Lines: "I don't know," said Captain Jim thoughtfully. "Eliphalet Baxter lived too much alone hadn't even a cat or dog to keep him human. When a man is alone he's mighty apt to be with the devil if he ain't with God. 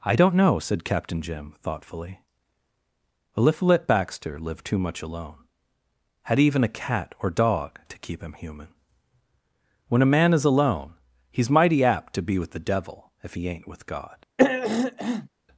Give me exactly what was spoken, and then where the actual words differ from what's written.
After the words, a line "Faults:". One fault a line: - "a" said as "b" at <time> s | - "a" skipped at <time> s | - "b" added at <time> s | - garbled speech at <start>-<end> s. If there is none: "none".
"I don't know," said Captain Jim thoughtfully. "Eliphalet Baxter lived too much alone had even a cat or dog to keep him human. When a man is alone he's mighty apt to be with the devil if he ain't with God.
Faults:
- "hadn't" said as "had" at 6.3 s